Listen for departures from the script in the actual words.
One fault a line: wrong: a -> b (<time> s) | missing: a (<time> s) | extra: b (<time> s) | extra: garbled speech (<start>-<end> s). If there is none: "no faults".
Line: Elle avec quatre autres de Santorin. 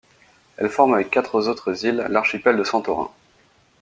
extra: forme (0.7 s)
extra: îles l'archipel (1.9 s)